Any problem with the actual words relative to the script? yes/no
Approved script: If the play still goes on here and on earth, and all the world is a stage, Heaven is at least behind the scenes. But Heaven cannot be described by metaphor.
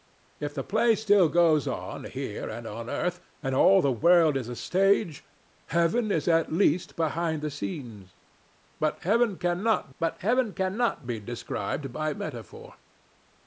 yes